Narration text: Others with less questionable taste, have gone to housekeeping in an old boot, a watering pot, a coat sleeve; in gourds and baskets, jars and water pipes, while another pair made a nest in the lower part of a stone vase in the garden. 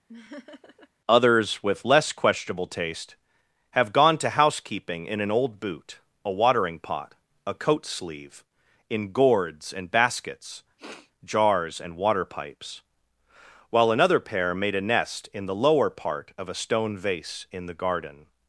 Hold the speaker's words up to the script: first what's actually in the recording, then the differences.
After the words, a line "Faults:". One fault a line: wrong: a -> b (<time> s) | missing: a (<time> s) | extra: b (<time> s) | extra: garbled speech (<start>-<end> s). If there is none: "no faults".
Others with less questionable taste, have gone to housekeeping in an old boot, a watering pot, a coat sleeve; in gourds and baskets, jars and water pipes, while another pair made a nest in the lower part of a stone vase in the garden.
Faults:
no faults